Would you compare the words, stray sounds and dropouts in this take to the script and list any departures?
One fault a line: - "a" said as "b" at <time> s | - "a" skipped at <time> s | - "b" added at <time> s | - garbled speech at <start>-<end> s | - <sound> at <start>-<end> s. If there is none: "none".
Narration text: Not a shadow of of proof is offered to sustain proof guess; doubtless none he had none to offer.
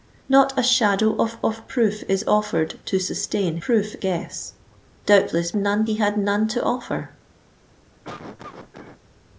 - cough at 8.0-9.0 s